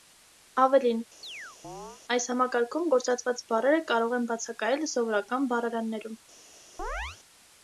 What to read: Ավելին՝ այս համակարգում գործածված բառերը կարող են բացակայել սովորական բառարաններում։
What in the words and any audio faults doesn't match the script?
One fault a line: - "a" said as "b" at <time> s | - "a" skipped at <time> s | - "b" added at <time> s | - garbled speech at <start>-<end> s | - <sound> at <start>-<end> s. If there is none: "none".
- chirp at 1.2-2.0 s
- chirp at 6.8-7.2 s